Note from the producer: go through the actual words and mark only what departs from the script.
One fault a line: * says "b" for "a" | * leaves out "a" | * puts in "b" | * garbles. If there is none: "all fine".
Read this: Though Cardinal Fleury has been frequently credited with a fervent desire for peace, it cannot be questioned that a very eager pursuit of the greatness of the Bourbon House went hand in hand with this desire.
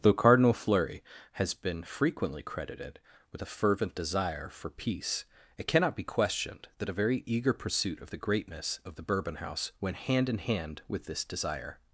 all fine